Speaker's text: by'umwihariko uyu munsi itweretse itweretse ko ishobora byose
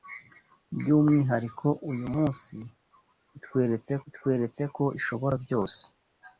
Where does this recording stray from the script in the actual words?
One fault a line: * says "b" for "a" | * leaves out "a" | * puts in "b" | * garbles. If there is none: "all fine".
all fine